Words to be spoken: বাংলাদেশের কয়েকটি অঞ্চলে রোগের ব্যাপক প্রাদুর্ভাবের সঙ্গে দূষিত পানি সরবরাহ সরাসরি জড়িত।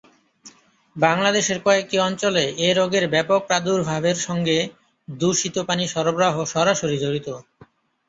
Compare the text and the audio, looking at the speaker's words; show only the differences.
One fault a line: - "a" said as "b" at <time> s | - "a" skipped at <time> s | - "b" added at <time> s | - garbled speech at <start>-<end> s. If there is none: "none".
- "এ" added at 2.6 s